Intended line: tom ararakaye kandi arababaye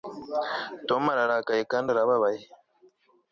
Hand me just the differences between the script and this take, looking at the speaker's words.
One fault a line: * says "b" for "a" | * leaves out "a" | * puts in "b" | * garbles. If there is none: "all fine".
all fine